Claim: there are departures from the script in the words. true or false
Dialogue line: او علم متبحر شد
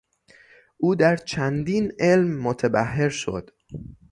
true